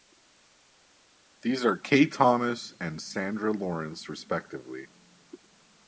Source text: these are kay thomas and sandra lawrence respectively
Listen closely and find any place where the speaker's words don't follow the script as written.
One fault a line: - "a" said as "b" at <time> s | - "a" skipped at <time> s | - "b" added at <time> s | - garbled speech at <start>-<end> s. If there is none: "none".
none